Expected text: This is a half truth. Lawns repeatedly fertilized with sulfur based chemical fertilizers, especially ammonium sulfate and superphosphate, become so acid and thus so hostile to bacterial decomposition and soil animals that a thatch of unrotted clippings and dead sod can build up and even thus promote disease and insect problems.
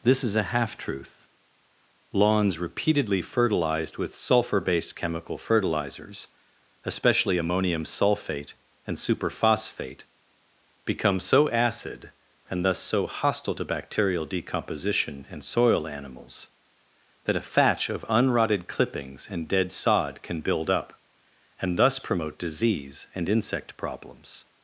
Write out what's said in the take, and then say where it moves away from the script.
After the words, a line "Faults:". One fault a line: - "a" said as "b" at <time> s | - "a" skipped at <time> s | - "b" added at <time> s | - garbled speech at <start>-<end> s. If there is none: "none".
This is a half truth. Lawns repeatedly fertilized with sulfur based chemical fertilizers, especially ammonium sulfate and superphosphate, become so acid and thus so hostile to bacterial decomposition and soil animals that a thatch of unrotted clippings and dead sod can build up and thus promote disease and insect problems.
Faults:
- "even" skipped at 21.8 s